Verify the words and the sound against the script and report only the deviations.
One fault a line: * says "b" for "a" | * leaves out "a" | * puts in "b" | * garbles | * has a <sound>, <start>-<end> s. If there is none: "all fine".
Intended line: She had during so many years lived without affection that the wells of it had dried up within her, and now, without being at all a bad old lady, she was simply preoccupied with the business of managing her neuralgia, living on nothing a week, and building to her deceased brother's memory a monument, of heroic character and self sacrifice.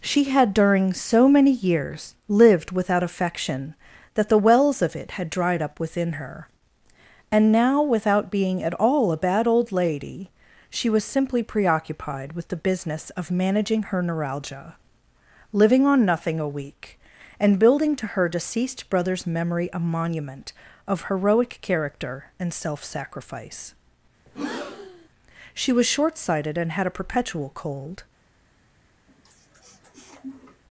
* has a breath, 24.3-25.1 s
* puts in "She was short sighted and had a perpetual cold"
* has a sniff, 29.1-30.6 s